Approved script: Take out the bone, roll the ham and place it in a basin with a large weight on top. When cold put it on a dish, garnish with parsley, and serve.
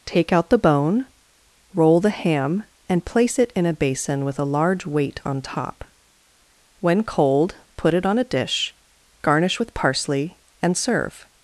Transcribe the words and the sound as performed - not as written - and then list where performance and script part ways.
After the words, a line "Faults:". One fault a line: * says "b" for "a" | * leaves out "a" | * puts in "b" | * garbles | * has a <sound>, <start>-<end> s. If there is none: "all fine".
Take out the bone, roll the ham and place it in a basin with a large weight on top. When cold put it on a dish, garnish with parsley, and serve.
Faults:
all fine